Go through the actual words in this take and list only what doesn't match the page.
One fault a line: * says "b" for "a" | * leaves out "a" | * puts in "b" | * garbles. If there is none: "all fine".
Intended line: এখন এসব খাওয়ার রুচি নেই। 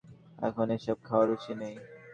all fine